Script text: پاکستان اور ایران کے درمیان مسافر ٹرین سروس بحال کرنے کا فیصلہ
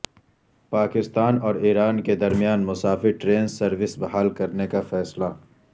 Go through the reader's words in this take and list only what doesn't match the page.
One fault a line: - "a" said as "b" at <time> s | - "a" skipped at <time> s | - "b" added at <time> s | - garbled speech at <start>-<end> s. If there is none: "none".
none